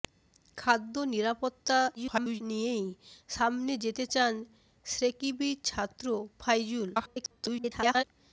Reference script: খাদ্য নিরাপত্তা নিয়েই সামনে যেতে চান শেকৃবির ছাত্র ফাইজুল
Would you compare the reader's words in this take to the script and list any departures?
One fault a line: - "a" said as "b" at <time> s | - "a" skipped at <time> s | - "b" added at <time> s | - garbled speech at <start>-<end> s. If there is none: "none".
- garbled speech at 2.0-2.4 s
- garbled speech at 6.9-8.0 s